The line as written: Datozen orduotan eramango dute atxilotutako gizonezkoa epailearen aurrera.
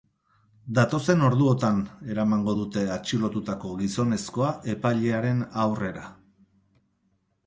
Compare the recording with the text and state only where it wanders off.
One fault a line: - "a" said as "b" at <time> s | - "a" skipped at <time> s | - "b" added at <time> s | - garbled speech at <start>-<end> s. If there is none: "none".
none